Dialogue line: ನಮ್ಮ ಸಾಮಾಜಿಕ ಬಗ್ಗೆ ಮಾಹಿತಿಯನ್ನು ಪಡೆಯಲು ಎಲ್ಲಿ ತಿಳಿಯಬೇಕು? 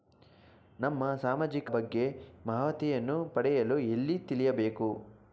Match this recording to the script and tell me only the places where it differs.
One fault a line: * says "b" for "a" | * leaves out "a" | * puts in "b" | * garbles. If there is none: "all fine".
all fine